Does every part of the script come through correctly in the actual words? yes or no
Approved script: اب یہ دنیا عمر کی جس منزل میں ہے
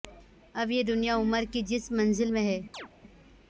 yes